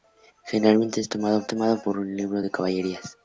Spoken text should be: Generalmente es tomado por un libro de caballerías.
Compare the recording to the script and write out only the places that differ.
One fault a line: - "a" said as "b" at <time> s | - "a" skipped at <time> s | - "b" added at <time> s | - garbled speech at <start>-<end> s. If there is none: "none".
- "tomado" added at 1.5 s